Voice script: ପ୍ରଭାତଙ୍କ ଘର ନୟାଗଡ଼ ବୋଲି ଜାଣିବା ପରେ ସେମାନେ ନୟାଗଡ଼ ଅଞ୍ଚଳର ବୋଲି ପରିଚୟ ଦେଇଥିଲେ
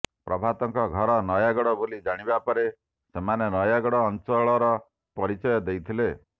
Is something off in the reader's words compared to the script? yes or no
yes